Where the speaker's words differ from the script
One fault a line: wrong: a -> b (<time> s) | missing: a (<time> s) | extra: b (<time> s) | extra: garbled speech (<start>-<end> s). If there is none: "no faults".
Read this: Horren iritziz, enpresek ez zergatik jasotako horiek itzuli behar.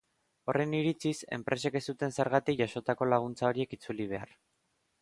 extra: zuten (1.9 s)
extra: laguntza (3.2 s)